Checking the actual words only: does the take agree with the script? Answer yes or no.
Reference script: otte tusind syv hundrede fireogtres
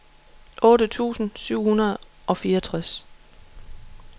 no